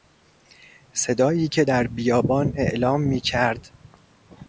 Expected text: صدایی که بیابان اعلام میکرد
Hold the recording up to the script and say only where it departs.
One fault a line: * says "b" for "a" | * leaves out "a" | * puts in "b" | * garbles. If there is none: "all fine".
* puts in "در"